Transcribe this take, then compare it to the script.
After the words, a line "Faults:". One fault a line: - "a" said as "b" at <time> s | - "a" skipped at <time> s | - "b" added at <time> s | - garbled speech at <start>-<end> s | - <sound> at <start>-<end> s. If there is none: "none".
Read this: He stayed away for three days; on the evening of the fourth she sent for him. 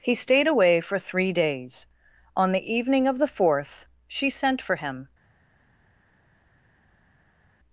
He stayed away for three days; on the evening of the fourth she sent for him.
Faults:
none